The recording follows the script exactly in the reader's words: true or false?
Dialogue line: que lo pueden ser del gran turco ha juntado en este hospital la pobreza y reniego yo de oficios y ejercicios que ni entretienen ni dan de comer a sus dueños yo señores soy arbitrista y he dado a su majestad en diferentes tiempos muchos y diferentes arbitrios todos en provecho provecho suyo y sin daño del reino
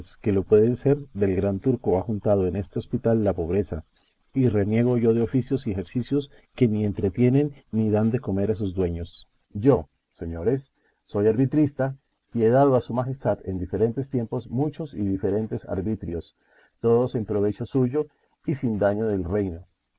false